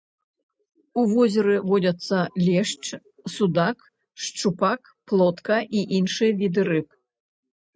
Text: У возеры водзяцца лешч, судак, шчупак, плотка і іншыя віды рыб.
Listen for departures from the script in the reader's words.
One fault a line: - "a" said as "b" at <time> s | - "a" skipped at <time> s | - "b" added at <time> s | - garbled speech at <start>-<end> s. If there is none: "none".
none